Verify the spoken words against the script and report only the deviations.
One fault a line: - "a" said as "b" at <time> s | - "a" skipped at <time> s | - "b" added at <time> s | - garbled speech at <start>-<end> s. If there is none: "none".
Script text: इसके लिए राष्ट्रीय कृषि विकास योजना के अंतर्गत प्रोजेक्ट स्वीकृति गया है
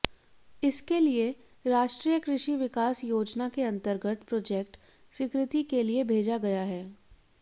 - "के लिए भेजा" added at 5.6 s